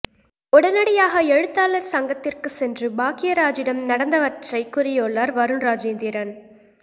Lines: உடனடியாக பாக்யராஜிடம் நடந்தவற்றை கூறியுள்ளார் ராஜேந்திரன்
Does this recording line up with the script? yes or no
no